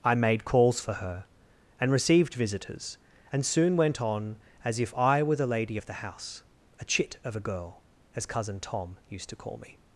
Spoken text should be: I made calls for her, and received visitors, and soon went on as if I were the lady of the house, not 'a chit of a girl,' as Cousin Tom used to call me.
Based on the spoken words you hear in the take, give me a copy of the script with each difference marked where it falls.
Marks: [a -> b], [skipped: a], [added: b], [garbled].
I made calls for her, and received visitors, and soon went on as if I were the lady of the house, [skipped: not] 'a chit of a girl,' as Cousin Tom used to call me.